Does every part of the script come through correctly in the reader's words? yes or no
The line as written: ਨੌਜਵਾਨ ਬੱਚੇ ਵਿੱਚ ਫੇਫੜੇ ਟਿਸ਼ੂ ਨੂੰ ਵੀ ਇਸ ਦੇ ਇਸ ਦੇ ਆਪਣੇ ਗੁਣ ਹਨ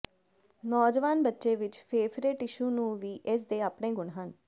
no